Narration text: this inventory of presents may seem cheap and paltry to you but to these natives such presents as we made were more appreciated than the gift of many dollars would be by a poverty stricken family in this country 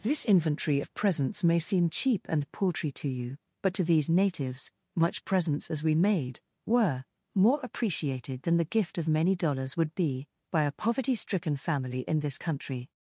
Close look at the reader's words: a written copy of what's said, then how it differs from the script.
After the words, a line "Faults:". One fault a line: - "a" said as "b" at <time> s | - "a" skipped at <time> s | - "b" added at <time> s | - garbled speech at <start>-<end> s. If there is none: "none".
this inventory of presents may seem cheap and paltry to you but to these natives much presents as we made were more appreciated than the gift of many dollars would be by a poverty stricken family in this country
Faults:
- "such" said as "much" at 4.9 s